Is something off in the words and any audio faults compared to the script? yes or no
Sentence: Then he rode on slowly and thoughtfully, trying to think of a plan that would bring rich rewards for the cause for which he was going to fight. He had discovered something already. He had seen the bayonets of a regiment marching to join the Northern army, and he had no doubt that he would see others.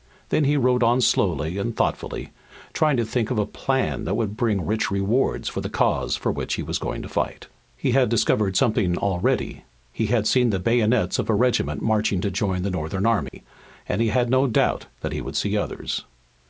yes